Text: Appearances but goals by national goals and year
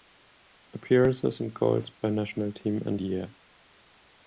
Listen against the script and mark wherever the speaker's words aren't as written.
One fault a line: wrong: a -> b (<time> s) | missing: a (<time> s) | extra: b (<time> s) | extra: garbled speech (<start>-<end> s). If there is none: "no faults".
wrong: but -> and (1.4 s)
wrong: goals -> team (2.5 s)